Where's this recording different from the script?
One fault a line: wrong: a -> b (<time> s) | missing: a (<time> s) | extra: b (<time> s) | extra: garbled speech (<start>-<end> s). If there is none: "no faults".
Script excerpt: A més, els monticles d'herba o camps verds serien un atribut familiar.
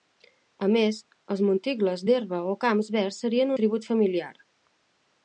missing: un (3.5 s)